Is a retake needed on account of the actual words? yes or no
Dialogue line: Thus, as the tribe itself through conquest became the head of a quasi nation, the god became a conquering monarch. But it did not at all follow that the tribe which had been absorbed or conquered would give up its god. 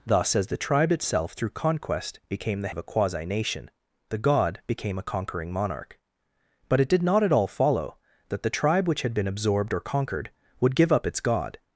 yes